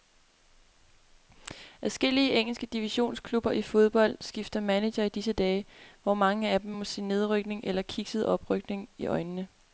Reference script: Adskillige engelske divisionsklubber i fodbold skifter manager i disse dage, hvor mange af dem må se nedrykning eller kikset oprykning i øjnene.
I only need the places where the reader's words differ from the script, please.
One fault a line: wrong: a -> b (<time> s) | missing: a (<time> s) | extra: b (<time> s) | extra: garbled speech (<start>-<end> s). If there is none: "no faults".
no faults